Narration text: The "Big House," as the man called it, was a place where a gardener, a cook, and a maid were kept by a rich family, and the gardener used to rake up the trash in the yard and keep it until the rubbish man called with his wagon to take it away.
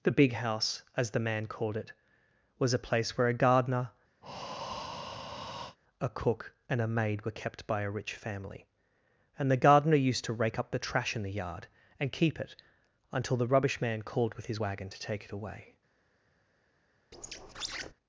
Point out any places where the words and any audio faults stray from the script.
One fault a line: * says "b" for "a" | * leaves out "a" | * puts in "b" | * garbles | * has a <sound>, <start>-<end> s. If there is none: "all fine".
* has a breath, 4.2-5.8 s
* has a squeak, 17.1-17.9 s